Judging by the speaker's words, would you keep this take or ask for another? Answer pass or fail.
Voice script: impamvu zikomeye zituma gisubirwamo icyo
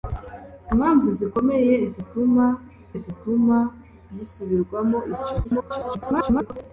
fail